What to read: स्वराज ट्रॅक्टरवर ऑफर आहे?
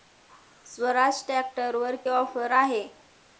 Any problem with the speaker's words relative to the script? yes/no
no